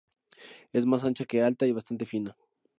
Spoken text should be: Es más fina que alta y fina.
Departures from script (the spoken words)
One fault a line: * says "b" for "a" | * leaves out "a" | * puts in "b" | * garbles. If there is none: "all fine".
* says "ancha" for "fina"
* puts in "bastante"